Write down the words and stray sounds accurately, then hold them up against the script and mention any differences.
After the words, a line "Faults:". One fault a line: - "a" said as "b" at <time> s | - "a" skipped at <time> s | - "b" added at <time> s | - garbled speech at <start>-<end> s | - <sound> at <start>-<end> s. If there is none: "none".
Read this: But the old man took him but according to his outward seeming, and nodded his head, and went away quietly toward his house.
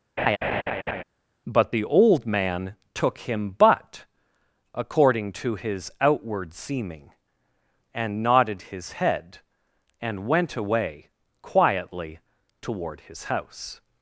But the old man took him but according to his outward seeming, and nodded his head, and went away quietly toward his house.
Faults:
- laugh at 0.2-1.0 s